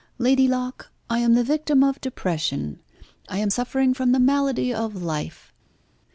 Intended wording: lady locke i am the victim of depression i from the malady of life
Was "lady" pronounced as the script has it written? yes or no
yes